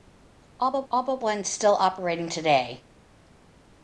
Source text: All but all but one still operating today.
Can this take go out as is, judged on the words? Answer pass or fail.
pass